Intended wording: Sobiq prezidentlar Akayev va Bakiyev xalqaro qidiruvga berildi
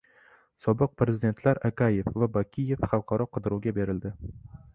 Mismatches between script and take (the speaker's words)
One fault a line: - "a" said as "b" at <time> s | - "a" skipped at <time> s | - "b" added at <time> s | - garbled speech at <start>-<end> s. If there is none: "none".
none